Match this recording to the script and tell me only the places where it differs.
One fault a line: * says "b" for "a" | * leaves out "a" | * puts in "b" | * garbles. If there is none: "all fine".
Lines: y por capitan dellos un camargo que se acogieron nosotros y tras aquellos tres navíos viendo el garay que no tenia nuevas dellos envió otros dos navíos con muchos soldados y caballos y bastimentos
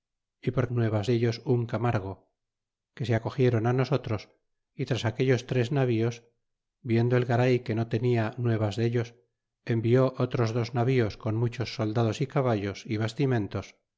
* says "nuevas" for "capitan"